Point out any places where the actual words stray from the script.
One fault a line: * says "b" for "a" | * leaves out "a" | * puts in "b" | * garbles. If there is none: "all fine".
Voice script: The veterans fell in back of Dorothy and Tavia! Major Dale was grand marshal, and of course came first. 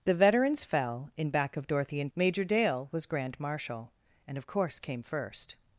* leaves out "Tavia"